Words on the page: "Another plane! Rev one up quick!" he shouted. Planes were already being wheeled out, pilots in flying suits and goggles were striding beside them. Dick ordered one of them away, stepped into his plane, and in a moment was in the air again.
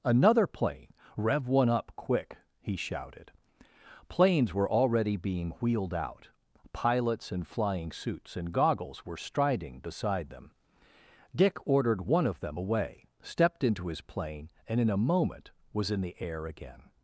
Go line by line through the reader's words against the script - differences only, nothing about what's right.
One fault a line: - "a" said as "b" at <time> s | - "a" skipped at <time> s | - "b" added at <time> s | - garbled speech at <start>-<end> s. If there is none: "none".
none